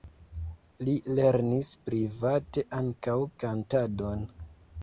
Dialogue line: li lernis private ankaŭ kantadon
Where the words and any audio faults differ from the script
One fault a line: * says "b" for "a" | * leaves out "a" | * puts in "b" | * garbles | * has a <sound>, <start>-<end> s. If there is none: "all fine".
all fine